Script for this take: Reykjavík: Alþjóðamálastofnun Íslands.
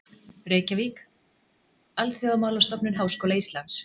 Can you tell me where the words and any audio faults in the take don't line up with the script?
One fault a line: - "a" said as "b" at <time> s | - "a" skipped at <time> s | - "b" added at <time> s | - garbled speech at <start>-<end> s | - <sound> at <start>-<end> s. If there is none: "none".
- "Háskóla" added at 3.0 s